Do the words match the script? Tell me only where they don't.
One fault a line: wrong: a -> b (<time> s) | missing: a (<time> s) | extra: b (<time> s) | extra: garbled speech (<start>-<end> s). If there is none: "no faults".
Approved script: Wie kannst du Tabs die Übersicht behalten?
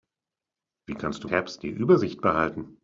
no faults